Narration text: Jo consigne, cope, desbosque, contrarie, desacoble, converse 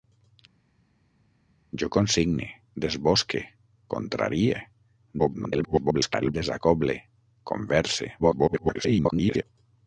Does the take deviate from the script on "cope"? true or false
true